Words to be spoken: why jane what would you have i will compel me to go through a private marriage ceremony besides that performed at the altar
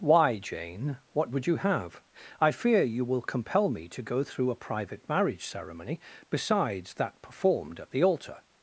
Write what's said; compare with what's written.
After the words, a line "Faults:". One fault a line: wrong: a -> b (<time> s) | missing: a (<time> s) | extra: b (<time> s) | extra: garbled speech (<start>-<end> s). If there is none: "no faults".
why jane what would you have i fear you will compel me to go through a private marriage ceremony besides that performed at the altar
Faults:
extra: fear you (2.5 s)